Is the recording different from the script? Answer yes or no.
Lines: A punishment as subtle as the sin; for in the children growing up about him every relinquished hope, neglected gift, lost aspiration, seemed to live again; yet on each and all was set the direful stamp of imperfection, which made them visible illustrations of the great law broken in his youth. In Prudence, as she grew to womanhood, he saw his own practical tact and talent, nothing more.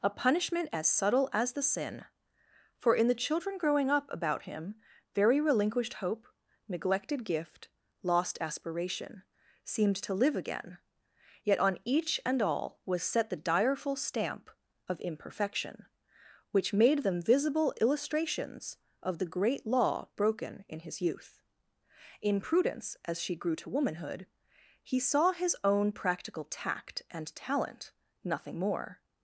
yes